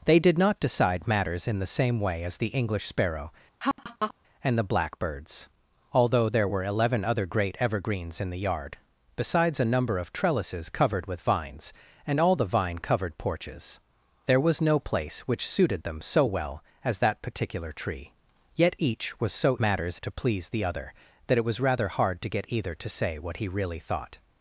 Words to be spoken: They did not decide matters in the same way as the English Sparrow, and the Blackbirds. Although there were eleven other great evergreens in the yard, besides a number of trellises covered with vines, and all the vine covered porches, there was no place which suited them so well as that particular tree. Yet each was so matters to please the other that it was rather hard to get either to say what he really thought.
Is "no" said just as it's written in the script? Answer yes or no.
yes